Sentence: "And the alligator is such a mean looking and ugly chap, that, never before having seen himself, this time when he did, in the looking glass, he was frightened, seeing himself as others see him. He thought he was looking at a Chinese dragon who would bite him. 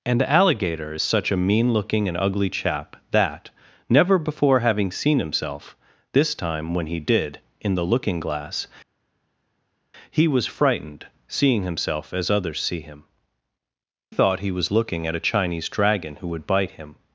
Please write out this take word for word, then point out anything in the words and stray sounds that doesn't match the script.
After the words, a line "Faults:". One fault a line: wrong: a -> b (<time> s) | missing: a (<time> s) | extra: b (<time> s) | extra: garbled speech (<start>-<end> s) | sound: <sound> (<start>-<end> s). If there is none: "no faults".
"And the alligator is such a mean looking and ugly chap, that, never before having seen himself, this time when he did, in the looking glass, he was frightened, seeing himself as others see him. Thought he was looking at a Chinese dragon who would bite him.
Faults:
missing: He (13.0 s)